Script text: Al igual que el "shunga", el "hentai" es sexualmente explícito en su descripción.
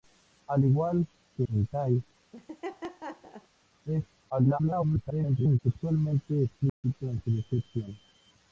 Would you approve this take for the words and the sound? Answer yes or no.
no